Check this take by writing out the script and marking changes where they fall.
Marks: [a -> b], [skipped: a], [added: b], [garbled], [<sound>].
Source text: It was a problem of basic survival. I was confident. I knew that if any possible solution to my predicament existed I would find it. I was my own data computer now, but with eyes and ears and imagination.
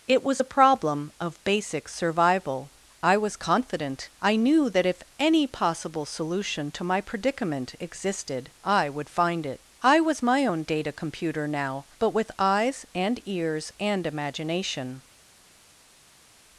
It was a problem of basic survival. I was confident. I knew that if any possible solution to my predicament existed I would find it. I was my own data computer now, but with eyes and ears and imagination.